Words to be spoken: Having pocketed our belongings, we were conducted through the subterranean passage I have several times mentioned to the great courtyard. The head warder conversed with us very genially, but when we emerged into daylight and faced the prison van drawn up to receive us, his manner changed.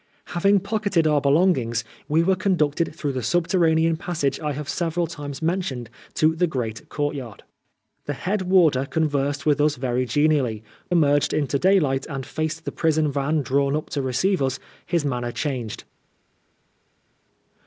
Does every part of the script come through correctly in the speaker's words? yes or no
no